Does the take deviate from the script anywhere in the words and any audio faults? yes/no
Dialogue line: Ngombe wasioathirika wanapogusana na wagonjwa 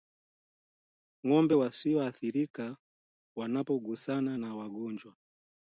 no